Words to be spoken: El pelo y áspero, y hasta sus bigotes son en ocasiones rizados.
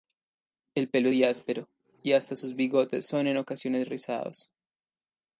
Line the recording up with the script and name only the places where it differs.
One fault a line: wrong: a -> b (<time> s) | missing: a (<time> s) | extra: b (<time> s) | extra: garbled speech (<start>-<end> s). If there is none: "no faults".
no faults